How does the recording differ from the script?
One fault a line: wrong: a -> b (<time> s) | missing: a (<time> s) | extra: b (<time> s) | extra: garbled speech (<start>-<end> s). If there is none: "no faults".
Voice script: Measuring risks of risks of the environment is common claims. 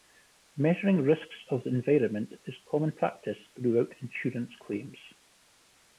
missing: risks of (1.6 s)
extra: practice throughout insurance (2.9 s)